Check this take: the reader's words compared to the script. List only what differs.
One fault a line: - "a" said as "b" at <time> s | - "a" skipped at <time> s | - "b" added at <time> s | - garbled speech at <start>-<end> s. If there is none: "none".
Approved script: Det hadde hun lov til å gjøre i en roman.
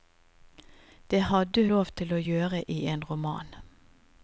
- "hun" skipped at 1.6 s